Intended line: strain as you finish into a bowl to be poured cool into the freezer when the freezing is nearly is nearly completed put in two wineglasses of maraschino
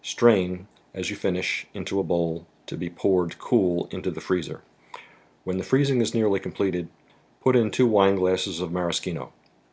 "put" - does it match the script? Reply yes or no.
yes